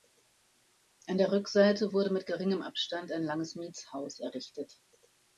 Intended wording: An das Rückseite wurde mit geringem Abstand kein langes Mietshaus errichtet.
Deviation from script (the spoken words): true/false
true